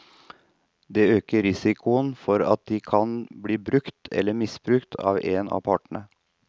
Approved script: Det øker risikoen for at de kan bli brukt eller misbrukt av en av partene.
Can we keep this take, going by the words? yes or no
yes